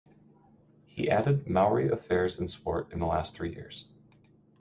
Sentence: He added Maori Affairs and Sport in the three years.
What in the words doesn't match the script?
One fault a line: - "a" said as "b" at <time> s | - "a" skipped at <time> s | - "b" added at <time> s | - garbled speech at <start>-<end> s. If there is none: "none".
- "last" added at 3.1 s